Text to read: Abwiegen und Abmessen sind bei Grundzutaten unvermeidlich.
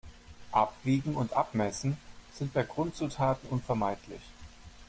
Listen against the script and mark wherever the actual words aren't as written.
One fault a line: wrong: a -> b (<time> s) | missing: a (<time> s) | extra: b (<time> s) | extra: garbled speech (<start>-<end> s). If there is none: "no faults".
no faults